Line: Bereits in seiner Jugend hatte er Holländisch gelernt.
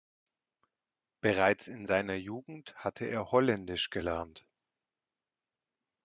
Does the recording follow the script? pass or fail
pass